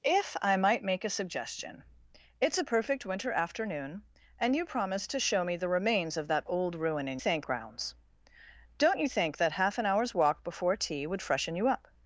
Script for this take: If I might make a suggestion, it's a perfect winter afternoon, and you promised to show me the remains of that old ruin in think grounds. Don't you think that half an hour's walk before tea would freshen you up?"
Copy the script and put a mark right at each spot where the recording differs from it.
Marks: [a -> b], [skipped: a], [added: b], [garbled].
If I might make a suggestion, it's a perfect winter afternoon, and you promised to show me the remains of that old ruin in think grounds. Don't you think that half an hour's walk before tea would freshen you up?"